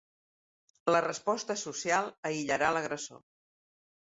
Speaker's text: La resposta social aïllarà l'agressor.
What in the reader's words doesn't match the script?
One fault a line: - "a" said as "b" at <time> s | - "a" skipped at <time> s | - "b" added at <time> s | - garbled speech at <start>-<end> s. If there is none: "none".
none